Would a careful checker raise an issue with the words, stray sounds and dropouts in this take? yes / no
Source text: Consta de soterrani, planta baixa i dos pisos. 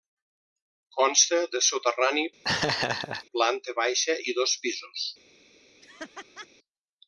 yes